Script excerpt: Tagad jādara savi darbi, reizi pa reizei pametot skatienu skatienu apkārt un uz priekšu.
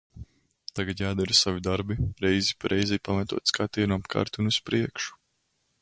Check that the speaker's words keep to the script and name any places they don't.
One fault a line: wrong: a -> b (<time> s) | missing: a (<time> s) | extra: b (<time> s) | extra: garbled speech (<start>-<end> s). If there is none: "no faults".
missing: skatienu (4.0 s)